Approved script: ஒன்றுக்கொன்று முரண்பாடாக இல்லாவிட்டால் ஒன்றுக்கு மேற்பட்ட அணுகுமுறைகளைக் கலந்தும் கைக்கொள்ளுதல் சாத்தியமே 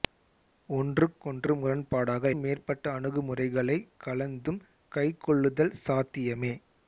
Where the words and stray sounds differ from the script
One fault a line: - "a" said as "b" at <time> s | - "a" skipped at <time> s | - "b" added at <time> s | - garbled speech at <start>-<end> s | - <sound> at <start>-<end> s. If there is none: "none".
- "இல்லாவிட்டால் ஒன்றுக்கு" skipped at 2.3 s